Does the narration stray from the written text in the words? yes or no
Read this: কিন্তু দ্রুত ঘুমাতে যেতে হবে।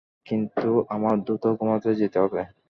yes